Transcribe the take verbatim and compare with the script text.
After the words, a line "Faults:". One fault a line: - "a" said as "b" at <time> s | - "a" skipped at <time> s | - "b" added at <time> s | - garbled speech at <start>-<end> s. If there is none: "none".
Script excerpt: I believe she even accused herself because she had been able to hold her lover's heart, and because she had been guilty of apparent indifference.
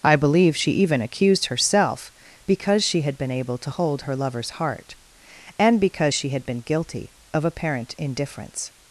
I believe she even accused herself because she had been able to hold her lover's heart, and because she had been guilty of apparent indifference.
Faults:
none